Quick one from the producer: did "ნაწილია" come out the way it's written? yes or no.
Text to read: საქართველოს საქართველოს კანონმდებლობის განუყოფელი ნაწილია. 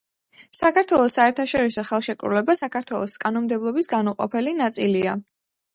yes